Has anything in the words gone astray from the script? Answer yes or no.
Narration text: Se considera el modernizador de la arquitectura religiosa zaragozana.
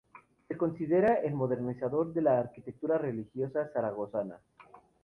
no